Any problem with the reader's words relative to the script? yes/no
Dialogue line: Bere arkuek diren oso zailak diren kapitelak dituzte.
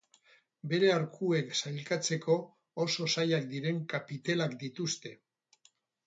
yes